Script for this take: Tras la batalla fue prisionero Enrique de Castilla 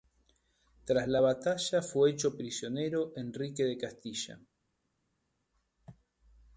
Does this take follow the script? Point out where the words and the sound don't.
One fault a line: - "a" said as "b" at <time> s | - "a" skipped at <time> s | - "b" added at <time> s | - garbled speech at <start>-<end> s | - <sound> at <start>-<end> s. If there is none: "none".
- "hecho" added at 2.1 s